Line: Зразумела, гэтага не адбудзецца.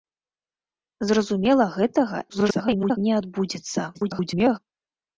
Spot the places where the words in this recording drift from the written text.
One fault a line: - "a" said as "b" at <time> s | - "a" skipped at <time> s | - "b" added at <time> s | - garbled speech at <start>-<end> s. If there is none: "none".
- garbled speech at 2.3-3.0 s
- garbled speech at 3.9-4.6 s